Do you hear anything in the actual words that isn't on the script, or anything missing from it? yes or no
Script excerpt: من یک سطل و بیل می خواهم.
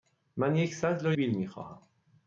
no